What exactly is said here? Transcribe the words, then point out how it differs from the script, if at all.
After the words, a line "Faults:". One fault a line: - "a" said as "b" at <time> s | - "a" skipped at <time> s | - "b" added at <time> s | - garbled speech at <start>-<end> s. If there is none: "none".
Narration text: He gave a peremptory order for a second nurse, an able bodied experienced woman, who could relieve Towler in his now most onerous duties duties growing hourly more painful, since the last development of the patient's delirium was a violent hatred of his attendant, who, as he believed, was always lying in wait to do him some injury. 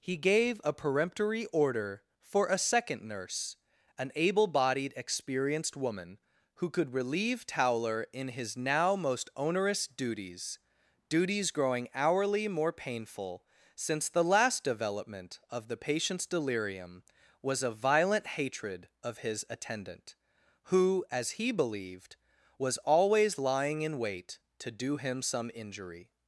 He gave a peremptory order for a second nurse, an able bodied experienced woman, who could relieve Towler in his now most onerous duties duties growing hourly more painful, since the last development of the patient's delirium was a violent hatred of his attendant, who, as he believed, was always lying in wait to do him some injury.
Faults:
none